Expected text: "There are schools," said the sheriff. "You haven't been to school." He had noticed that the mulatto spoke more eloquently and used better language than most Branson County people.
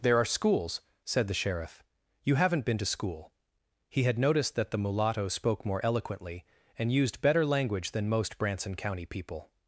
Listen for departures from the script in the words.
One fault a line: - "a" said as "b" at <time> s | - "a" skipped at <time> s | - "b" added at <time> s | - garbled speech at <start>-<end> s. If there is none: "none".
none